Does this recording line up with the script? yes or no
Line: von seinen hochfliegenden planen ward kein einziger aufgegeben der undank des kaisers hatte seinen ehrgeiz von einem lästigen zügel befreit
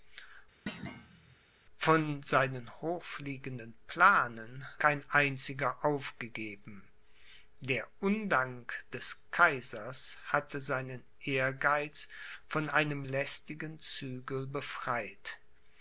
no